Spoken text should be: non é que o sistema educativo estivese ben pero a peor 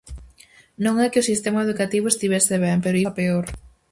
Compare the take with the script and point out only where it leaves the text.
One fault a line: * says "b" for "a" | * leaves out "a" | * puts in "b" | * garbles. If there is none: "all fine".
all fine